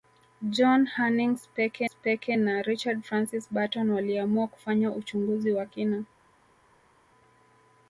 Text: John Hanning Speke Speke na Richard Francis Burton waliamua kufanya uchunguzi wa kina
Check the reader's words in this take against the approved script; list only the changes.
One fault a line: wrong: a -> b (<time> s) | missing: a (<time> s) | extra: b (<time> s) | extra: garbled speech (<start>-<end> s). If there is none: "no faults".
no faults